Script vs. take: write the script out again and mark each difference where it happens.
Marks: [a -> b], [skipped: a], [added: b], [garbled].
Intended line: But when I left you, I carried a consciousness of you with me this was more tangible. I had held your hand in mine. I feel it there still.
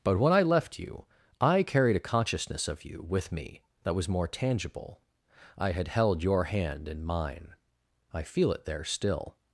But when I left you, I carried a consciousness of you with me [this -> that] was more tangible. I had held your hand in mine. I feel it there still.